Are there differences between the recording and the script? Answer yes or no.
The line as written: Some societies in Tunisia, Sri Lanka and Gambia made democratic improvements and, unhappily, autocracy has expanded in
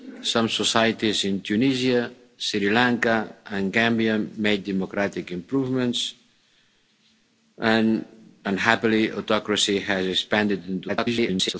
yes